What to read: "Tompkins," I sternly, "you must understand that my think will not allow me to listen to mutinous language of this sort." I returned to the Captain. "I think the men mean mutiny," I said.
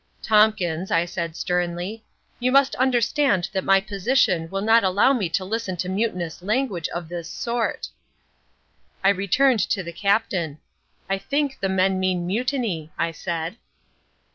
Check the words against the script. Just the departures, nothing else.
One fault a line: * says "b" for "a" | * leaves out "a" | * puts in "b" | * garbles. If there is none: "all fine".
* puts in "said"
* says "position" for "think"